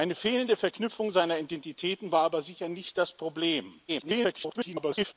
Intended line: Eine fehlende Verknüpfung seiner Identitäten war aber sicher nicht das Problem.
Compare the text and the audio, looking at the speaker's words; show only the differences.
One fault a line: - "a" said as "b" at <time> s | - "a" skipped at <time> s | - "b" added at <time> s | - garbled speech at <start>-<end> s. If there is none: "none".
- garbled speech at 3.9-5.1 s